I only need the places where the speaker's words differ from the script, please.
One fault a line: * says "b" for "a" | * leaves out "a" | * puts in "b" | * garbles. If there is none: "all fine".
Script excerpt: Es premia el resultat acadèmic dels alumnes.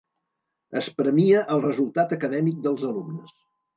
all fine